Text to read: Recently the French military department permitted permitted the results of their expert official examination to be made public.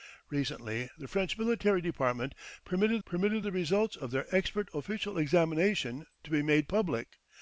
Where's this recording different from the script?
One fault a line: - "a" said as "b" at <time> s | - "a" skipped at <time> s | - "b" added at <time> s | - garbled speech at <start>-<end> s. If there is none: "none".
none